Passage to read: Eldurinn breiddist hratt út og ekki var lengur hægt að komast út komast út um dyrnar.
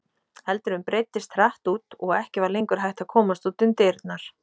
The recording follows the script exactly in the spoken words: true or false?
false